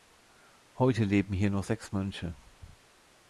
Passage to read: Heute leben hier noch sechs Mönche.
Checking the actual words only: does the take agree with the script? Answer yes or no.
yes